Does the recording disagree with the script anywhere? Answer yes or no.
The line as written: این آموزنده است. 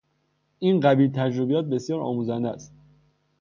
yes